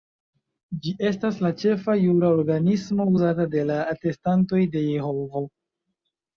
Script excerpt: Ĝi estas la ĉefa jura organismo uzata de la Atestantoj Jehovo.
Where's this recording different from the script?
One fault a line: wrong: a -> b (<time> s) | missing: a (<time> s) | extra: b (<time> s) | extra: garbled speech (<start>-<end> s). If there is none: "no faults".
extra: de (4.8 s)